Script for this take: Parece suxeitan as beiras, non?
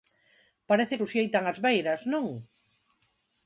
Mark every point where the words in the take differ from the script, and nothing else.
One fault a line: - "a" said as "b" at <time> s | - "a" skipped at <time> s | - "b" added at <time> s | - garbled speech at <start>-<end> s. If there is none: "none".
none